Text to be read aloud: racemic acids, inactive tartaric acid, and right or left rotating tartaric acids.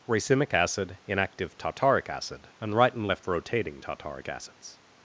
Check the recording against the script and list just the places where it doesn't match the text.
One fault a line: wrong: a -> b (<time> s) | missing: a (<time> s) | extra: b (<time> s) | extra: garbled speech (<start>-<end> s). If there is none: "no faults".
wrong: acids -> acid (0.5 s)
wrong: or -> and (2.9 s)